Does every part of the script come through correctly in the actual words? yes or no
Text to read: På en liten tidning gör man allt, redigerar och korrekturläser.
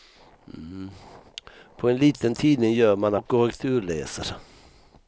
no